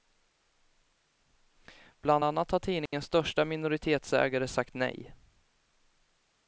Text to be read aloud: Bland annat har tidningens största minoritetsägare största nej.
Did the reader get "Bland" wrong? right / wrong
right